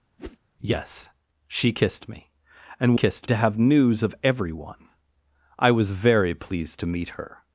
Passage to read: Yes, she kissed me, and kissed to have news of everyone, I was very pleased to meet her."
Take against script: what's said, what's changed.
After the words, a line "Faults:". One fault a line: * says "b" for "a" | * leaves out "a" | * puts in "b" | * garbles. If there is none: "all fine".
Yes, she kissed me, and kissed to have news of everyone, I was very pleased to meet her."
Faults:
all fine